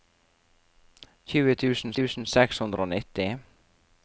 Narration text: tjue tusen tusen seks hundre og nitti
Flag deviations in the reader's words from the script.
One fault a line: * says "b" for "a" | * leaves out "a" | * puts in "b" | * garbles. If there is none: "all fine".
all fine